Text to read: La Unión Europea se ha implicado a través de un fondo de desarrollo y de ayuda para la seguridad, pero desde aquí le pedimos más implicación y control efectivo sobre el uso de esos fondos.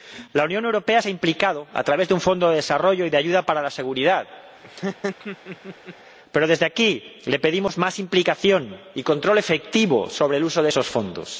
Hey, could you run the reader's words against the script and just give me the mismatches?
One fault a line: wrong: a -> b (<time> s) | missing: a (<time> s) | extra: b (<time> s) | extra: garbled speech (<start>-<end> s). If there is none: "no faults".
no faults